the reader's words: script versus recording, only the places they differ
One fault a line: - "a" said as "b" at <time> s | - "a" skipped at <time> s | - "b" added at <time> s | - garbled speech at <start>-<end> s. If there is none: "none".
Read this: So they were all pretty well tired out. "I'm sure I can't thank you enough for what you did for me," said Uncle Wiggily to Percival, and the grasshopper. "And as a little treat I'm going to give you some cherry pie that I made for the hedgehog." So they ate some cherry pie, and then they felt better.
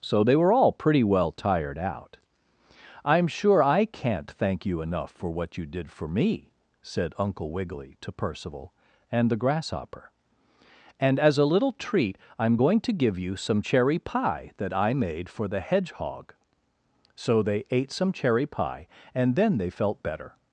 none